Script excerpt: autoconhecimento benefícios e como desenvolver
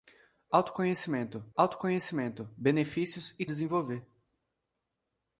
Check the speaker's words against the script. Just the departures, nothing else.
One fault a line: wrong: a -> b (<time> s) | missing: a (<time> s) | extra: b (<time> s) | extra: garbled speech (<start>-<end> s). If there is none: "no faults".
extra: autoconhecimento (1.5 s)
missing: como (3.4 s)